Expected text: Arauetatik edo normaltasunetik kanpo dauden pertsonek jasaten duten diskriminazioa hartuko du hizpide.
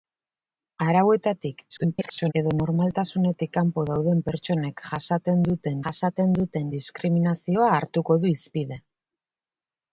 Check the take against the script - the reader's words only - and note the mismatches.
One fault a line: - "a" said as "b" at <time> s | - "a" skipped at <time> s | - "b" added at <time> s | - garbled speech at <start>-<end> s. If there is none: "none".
- garbled speech at 1.7-2.3 s
- "jasaten duten" added at 5.9 s